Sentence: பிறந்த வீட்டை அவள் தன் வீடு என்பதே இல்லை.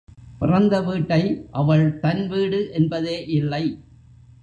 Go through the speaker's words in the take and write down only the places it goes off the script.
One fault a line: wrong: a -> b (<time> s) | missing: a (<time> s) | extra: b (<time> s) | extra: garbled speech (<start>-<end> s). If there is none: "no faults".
no faults